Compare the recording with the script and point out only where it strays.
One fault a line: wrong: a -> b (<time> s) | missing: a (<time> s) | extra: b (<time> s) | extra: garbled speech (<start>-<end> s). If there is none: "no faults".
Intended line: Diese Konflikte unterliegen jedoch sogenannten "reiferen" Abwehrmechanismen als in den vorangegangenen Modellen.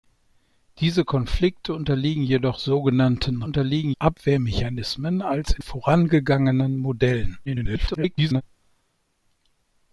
wrong: reiferen -> unterliegen (3.4 s)
missing: den (5.6 s)
extra: garbled speech (7.5-8.4 s)